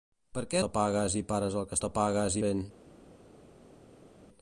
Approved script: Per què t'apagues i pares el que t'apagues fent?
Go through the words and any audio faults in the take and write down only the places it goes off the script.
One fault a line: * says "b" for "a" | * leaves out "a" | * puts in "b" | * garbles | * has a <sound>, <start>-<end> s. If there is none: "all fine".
all fine